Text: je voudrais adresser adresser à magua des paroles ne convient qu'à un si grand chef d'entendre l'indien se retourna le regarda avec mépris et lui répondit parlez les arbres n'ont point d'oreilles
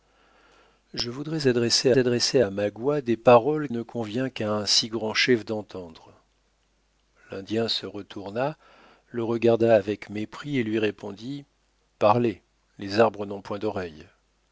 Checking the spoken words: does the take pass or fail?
pass